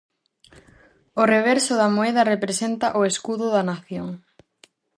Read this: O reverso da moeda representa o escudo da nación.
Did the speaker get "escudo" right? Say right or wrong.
right